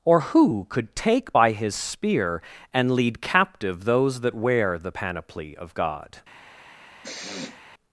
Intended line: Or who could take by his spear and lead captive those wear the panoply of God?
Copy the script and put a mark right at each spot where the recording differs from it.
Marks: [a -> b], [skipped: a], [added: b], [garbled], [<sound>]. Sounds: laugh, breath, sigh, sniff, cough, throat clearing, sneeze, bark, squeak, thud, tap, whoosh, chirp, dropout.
Or who could take by his spear and lead captive those [added: that] wear the panoply of God? [sniff]